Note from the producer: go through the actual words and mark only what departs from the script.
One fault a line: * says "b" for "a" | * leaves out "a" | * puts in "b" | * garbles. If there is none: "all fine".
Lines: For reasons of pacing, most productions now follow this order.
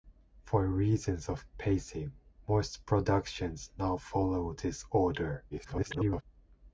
* garbles